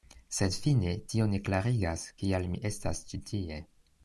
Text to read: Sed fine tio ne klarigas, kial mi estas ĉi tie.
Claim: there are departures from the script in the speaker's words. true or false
false